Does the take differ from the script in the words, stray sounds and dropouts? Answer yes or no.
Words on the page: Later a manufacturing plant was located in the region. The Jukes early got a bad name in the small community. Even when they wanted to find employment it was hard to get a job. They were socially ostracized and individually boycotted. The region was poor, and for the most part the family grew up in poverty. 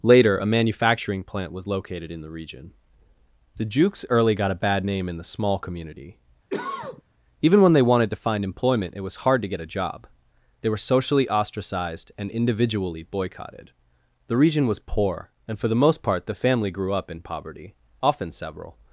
yes